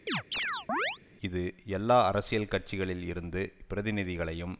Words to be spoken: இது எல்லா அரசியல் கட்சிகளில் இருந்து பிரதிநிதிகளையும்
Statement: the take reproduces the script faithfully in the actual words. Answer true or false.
true